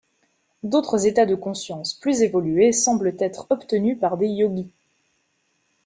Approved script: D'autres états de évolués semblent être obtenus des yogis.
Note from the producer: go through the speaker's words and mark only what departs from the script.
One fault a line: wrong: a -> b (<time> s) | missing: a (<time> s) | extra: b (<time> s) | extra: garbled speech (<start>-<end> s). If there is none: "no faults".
extra: conscience plus (1.4 s)
extra: par (4.0 s)